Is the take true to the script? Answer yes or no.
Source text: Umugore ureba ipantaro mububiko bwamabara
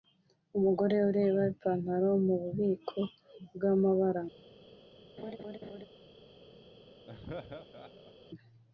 yes